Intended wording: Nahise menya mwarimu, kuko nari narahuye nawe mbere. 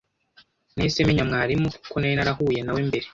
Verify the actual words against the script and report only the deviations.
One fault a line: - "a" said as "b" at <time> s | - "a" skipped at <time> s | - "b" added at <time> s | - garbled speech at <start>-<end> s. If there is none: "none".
none